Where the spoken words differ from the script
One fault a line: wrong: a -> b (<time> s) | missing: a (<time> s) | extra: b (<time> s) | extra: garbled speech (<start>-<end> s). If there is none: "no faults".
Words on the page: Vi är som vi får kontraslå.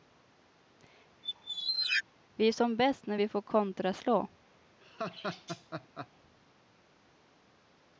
extra: bäst när (2.8 s)